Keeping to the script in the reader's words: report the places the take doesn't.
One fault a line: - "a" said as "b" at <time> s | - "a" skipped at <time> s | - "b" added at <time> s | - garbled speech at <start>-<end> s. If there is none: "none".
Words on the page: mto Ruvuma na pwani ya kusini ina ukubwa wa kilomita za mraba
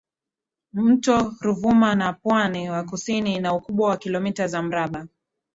none